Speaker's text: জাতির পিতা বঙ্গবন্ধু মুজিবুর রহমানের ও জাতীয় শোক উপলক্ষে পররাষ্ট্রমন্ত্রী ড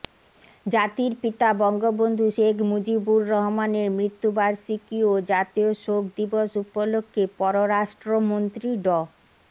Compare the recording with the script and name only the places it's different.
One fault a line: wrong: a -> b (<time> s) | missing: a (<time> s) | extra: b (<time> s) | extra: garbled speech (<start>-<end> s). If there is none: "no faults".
extra: শেখ (2.3 s)
extra: মৃত্যুবার্ষিকী (4.0 s)
extra: দিবস (6.2 s)